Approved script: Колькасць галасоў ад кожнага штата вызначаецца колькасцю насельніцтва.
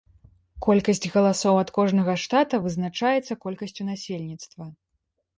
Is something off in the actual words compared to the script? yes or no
no